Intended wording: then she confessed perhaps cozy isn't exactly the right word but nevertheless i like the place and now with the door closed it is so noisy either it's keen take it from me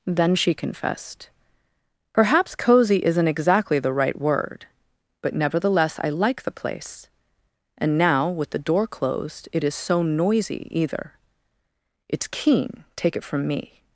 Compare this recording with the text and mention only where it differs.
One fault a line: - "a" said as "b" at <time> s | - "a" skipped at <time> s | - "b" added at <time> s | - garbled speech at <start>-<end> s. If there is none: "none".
none